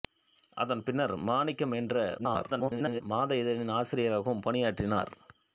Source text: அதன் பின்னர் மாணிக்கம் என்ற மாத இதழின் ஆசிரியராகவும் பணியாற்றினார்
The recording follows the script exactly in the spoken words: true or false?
false